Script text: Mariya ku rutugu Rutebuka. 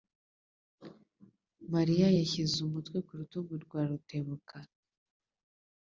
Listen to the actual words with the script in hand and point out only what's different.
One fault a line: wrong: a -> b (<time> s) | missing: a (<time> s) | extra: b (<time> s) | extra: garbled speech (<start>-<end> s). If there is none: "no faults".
extra: yashyize umutwe (2.2 s)
extra: rwa (3.6 s)